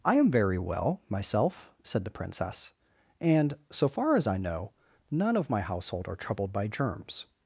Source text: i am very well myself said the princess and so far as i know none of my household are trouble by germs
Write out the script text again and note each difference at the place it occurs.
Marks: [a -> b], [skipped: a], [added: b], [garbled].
i am very well myself said the princess and so far as i know none of my household are [trouble -> troubled] by germs